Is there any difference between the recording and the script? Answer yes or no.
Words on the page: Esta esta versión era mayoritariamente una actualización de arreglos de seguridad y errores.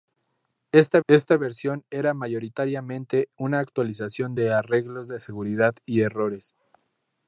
no